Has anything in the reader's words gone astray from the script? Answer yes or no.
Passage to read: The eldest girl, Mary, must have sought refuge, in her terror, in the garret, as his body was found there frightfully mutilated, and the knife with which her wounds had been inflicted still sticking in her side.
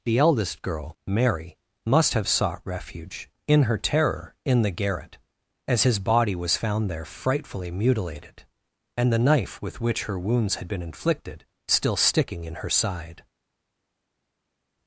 no